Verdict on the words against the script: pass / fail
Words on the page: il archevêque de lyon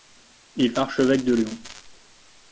pass